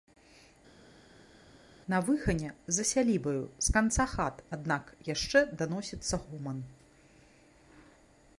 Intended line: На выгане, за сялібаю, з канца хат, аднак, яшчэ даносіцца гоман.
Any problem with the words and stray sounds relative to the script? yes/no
no